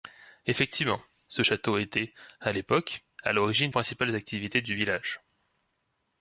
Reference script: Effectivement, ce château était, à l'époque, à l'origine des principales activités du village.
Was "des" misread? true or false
true